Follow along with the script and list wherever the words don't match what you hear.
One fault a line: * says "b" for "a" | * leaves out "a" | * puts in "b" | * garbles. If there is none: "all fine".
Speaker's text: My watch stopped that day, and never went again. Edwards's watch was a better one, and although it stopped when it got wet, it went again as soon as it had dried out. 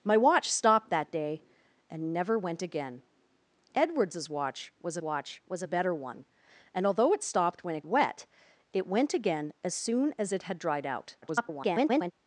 * puts in "watch was"
* leaves out "got"
* garbles